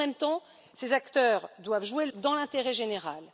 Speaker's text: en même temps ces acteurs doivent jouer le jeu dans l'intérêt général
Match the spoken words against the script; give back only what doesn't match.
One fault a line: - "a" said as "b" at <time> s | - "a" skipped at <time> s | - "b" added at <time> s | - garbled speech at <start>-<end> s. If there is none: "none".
- "jeu" skipped at 2.1 s